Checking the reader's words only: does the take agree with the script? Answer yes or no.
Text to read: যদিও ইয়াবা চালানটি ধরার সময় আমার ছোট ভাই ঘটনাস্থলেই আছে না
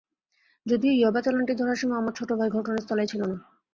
no